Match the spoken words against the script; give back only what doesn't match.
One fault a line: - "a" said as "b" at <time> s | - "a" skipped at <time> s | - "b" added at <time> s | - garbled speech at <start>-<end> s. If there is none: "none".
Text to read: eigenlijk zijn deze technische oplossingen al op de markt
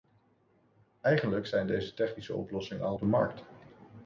none